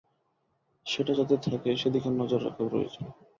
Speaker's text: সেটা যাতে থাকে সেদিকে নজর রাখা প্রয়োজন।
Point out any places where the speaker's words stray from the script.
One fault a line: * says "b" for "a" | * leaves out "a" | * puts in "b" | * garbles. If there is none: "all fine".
all fine